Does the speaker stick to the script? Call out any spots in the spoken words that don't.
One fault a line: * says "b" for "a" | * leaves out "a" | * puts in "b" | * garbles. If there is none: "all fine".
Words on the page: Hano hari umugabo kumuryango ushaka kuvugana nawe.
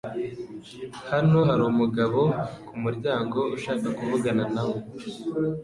all fine